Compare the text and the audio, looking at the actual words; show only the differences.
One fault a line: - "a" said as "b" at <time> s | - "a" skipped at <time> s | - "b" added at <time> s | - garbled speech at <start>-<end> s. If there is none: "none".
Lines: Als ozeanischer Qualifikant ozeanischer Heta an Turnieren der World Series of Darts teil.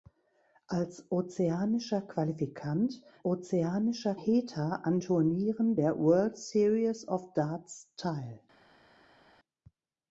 none